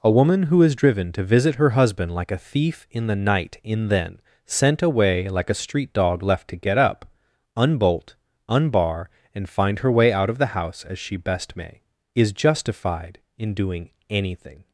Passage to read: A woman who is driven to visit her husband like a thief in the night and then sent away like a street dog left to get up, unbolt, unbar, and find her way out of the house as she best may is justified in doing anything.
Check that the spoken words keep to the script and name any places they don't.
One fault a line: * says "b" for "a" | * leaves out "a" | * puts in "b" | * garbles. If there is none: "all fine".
* says "in" for "and"